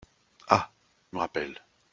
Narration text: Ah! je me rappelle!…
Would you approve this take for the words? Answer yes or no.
no